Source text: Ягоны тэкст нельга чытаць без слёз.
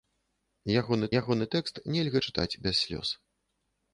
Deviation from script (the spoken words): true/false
true